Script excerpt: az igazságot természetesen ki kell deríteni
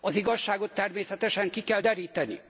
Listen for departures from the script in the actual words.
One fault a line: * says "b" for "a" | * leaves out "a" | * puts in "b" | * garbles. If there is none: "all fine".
all fine